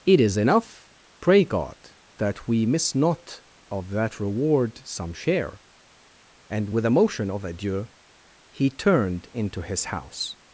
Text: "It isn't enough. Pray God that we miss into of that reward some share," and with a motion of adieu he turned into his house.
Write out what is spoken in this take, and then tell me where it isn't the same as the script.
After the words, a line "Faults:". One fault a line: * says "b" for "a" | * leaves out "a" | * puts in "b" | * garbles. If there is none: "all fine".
"It is enough. Pray God that we miss not of that reward some share," and with a motion of adieu he turned into his house.
Faults:
* says "is" for "isn't"
* says "not" for "into"